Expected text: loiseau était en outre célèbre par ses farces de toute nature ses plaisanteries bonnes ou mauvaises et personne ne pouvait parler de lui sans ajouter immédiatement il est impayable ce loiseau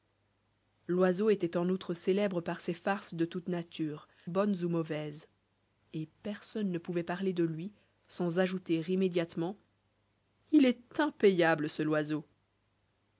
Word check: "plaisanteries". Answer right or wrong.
wrong